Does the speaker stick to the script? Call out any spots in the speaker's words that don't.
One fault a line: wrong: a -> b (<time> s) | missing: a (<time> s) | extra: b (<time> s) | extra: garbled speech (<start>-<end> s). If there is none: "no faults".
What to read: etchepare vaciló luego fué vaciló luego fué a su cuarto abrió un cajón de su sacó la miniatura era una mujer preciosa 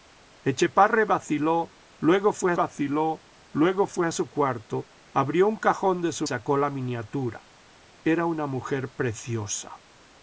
no faults